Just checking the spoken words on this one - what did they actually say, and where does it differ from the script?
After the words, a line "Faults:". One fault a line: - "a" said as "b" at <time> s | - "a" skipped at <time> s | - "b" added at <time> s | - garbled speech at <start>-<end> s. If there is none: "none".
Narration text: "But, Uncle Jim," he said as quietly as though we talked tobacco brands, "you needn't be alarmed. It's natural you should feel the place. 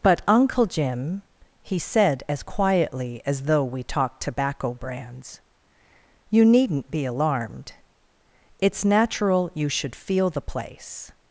"But, Uncle Jim," he said as quietly as though we talked tobacco brands, "you needn't be alarmed. It's natural you should feel the place.
Faults:
none